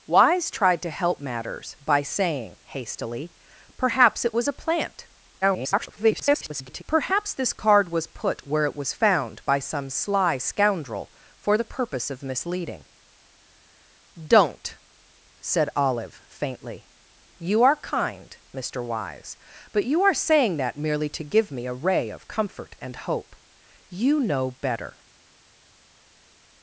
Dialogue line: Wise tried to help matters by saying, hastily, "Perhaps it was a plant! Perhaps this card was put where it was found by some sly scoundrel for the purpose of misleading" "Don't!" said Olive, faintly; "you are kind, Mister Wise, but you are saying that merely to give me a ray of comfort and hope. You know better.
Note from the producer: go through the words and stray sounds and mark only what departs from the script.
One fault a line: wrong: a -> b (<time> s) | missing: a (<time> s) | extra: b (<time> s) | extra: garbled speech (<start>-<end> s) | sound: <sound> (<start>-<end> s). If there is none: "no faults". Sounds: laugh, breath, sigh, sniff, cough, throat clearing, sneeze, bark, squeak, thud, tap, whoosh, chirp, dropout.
extra: garbled speech (5.4-6.8 s)